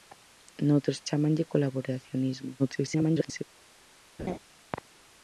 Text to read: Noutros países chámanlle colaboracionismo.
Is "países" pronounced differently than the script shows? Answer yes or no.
yes